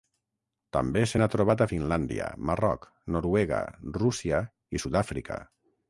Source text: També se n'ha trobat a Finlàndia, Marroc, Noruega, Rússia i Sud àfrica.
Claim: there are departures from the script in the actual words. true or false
false